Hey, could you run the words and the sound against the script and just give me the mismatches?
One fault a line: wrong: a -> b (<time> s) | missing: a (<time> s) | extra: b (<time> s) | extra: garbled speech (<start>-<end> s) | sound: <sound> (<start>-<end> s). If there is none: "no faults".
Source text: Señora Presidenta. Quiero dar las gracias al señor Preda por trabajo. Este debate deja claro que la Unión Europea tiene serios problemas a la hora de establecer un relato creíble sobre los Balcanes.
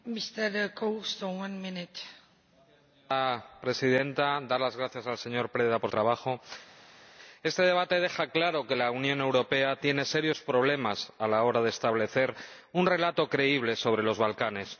no faults